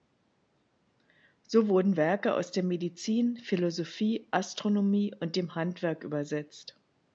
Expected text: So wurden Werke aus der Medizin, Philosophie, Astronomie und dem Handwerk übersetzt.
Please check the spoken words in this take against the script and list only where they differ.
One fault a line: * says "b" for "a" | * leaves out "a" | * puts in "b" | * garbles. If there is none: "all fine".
all fine